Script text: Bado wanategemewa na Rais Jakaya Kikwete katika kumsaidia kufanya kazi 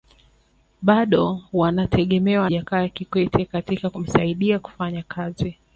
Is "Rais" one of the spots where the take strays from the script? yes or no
yes